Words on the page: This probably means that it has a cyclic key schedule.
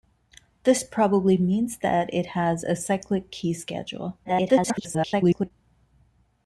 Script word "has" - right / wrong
right